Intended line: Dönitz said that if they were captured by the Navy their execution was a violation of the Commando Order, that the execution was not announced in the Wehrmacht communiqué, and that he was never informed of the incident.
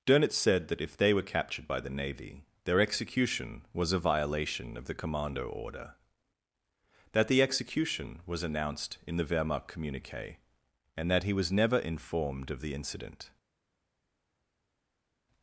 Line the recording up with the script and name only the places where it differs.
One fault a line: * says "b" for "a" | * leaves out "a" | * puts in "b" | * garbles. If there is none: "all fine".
* leaves out "not"